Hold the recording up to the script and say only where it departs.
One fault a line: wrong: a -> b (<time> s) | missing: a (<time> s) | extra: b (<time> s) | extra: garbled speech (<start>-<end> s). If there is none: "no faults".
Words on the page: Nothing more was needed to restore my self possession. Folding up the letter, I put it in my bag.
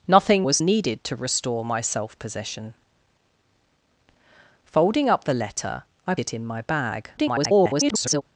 missing: more (0.5 s)
missing: put (6.2 s)
extra: garbled speech (7.2-8.2 s)